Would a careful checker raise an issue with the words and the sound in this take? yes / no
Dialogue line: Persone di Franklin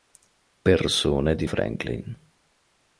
no